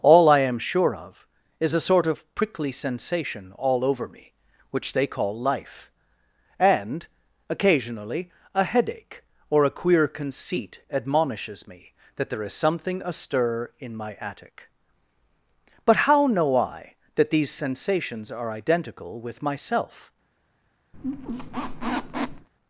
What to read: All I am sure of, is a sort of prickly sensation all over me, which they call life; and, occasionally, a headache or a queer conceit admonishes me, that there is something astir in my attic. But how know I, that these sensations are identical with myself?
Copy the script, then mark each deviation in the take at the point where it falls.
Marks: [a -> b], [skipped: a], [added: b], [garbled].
All I am sure of, is a sort of prickly sensation all over me, which they call life; and, occasionally, a headache or a queer conceit admonishes me, that there is something astir in my attic. But how know I, that these sensations are identical with myself?